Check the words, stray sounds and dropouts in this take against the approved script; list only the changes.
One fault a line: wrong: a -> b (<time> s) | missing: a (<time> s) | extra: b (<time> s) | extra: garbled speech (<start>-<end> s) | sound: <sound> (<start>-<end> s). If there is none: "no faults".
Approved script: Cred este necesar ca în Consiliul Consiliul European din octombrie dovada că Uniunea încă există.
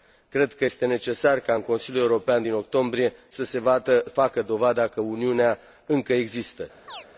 extra: că (0.5 s)
missing: Consiliul (2.0 s)
extra: să se facă (3.3 s)
sound: chirp (6.9-7.1 s)